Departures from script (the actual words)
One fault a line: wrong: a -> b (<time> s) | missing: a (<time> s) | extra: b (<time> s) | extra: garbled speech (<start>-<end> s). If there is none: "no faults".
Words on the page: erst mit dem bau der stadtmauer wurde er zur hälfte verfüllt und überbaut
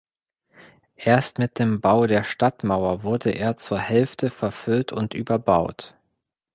no faults